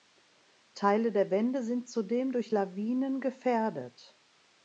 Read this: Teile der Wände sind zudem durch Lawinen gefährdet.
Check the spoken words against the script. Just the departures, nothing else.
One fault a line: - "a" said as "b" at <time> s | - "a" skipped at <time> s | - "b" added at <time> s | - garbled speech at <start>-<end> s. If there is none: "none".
none